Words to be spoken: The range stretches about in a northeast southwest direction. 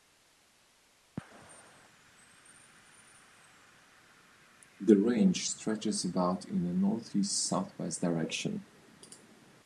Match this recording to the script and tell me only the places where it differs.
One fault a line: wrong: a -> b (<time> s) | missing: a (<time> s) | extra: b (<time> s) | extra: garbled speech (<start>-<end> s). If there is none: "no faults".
no faults